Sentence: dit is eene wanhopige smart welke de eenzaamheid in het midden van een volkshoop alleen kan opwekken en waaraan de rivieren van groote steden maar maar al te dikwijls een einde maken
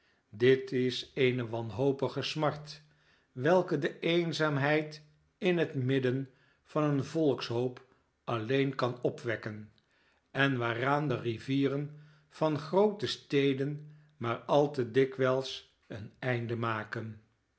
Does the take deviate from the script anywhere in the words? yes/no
yes